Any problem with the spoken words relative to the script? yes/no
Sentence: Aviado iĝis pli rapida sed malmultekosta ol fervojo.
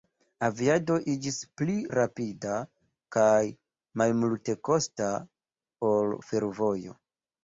yes